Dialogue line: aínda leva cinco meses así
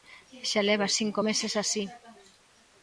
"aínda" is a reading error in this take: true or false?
true